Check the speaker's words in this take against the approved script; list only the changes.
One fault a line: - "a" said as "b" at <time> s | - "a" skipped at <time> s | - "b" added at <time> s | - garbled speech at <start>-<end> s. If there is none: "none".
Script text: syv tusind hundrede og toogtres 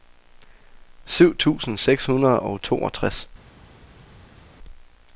- "seks" added at 1.8 s